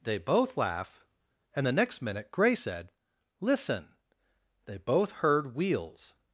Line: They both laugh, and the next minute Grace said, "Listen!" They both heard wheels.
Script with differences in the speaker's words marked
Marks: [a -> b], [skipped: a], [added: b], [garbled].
They both laugh, and the next minute Grace said, "Listen!" They both heard wheels.